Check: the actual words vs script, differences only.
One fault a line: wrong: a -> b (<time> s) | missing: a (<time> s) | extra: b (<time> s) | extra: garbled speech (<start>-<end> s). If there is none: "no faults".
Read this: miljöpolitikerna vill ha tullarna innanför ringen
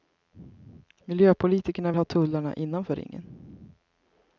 missing: vill (1.9 s)